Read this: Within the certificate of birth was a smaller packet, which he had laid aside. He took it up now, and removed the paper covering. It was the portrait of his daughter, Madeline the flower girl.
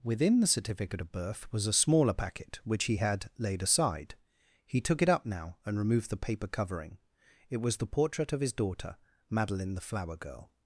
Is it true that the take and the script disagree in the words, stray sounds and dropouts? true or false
false